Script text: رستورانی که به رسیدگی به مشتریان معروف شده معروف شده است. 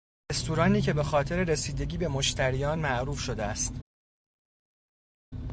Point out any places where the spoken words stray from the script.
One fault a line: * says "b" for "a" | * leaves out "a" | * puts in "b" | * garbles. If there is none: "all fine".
* puts in "خاطر"
* leaves out "معروف شده"